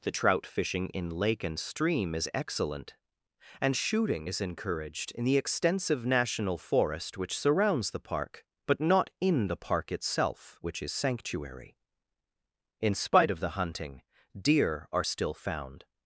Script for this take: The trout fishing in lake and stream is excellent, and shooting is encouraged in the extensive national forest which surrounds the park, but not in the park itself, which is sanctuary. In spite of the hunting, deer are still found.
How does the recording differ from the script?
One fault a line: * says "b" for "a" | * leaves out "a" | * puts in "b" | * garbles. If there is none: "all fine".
all fine